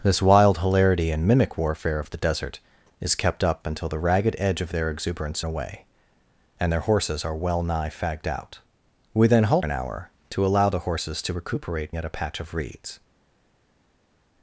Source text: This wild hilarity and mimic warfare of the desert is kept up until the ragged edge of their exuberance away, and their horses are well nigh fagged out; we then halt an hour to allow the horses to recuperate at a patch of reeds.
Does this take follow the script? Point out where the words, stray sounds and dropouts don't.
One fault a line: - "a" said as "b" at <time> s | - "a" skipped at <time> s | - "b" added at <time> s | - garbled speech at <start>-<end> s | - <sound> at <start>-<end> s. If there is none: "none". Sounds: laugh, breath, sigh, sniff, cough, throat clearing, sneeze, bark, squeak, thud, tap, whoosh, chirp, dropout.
none